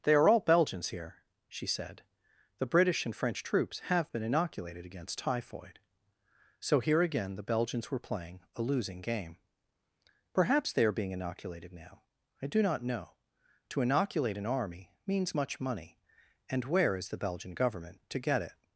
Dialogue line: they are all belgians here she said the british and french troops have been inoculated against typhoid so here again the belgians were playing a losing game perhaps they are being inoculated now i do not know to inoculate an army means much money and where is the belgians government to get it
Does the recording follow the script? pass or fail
fail